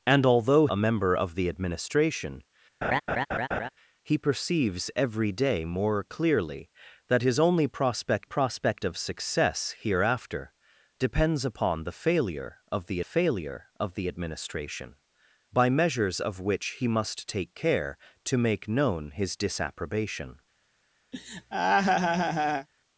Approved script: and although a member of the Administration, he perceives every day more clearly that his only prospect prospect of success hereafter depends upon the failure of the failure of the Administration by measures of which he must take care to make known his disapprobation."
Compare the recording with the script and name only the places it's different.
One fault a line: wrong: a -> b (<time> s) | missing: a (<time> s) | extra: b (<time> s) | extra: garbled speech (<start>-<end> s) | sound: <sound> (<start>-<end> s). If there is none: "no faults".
sound: laugh (2.8-3.7 s)
sound: laugh (21.1-22.7 s)